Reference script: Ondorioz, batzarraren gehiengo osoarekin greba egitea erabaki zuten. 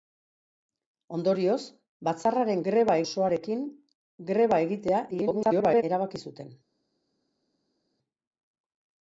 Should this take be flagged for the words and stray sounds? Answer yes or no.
yes